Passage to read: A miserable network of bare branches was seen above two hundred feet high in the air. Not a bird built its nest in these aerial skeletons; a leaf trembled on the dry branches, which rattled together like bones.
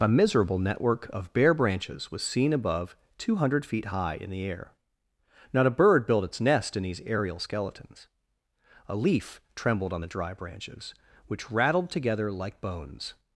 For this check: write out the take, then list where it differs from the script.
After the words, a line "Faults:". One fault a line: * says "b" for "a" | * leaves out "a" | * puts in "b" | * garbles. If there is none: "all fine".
A miserable network of bare branches was seen above two hundred feet high in the air. Not a bird built its nest in these aerial skeletons; a leaf trembled on the dry branches, which rattled together like bones.
Faults:
all fine